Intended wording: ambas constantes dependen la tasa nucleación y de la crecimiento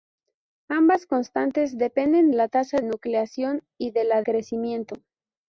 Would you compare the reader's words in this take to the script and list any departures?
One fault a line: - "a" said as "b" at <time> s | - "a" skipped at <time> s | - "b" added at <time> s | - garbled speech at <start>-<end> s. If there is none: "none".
none